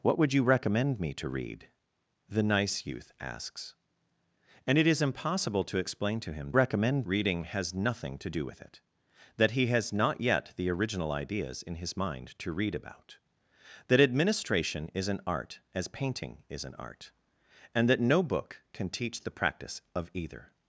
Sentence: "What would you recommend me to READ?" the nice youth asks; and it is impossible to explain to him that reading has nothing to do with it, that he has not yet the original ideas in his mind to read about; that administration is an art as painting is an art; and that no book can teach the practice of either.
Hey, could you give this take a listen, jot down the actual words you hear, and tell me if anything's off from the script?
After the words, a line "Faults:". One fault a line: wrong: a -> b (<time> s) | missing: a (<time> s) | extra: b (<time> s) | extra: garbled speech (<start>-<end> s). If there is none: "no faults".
"What would you recommend me to READ?" the nice youth asks; and it is impossible to explain to him recommend reading has nothing to do with it, that he has not yet the original ideas in his mind to read about; that administration is an art as painting is an art; and that no book can teach the practice of either.
Faults:
wrong: that -> recommend (6.5 s)